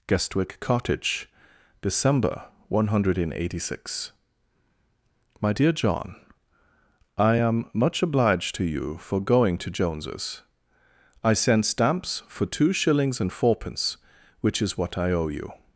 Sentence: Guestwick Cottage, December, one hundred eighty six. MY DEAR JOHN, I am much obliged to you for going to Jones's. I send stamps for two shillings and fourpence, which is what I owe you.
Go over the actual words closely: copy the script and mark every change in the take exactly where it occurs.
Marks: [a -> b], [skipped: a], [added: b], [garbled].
Guestwick Cottage, December, one hundred eighty six. MY DEAR JOHN, I am much obliged to you for going to Jones's. I send stamps for two shillings and fourpence, which is what I owe you.